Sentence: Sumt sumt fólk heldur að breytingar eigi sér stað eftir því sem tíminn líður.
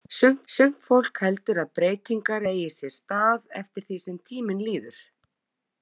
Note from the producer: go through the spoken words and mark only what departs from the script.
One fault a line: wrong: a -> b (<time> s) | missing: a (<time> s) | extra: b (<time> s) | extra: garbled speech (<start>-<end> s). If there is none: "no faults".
no faults